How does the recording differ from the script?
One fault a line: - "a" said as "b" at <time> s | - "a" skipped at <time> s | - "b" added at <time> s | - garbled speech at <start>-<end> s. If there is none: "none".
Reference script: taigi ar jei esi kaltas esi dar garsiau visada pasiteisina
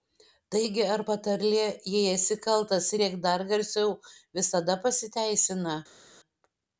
- "patarlė" added at 1.1 s
- "esi" said as "rėk" at 3.0 s